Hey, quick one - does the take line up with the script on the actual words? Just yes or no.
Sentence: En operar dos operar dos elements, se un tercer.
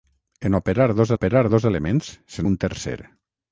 yes